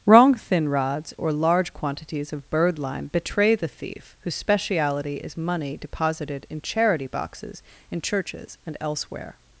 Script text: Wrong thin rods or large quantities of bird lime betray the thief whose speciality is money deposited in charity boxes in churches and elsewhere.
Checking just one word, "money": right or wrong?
right